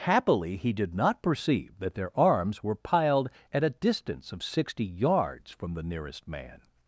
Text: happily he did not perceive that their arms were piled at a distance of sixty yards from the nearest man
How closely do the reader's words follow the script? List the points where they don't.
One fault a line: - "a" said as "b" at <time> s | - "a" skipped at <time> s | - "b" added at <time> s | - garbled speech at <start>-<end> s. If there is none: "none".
none